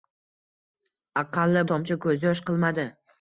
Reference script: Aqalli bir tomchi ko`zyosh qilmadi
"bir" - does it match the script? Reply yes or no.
no